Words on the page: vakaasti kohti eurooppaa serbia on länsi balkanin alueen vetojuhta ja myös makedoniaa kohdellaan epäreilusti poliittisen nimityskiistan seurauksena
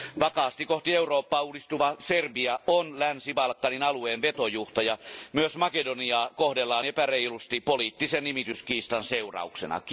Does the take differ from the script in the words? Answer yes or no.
yes